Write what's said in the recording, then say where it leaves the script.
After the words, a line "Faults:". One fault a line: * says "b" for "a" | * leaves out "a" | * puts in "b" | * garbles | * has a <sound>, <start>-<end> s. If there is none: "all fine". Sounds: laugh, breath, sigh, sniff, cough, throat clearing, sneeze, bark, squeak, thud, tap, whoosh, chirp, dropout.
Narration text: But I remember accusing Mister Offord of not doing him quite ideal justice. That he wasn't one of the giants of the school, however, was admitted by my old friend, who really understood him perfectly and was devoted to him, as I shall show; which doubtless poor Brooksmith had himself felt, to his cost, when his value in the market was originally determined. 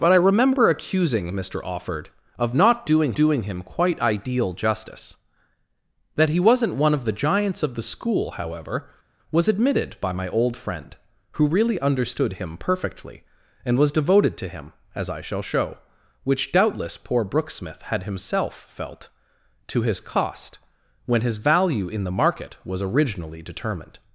But I remember accusing Mister Offord of not doing doing him quite ideal justice. That he wasn't one of the giants of the school, however, was admitted by my old friend, who really understood him perfectly and was devoted to him, as I shall show; which doubtless poor Brooksmith had himself felt, to his cost, when his value in the market was originally determined.
Faults:
* puts in "doing"